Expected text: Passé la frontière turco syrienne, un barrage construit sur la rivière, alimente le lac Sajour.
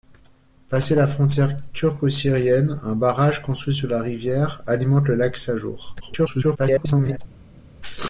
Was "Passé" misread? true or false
false